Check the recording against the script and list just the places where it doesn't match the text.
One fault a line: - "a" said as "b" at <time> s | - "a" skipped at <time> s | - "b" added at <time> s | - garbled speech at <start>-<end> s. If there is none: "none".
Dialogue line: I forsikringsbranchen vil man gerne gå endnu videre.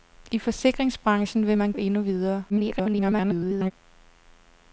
- "gerne gå" skipped at 1.7 s
- garbled speech at 2.5-3.7 s